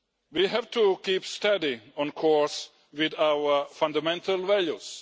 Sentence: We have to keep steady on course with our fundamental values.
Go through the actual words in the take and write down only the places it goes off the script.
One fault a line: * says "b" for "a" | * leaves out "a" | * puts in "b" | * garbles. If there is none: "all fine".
all fine